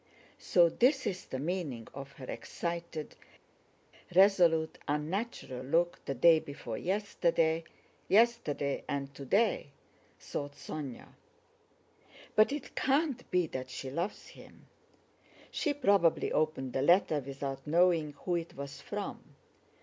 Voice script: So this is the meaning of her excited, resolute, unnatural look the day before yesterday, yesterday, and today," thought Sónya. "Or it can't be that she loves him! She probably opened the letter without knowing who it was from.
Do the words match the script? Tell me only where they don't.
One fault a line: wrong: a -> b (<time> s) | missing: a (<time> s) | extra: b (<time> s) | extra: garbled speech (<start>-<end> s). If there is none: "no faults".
wrong: Or -> But (12.3 s)